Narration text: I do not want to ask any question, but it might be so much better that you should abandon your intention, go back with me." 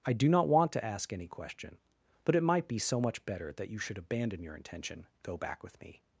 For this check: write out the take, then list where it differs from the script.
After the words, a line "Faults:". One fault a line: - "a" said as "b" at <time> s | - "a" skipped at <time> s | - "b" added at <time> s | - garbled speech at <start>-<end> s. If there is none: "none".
I do not want to ask any question, but it might be so much better that you should abandon your intention, go back with me."
Faults:
none